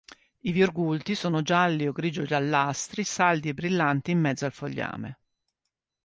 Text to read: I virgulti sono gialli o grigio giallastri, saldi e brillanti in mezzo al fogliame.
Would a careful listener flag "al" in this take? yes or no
no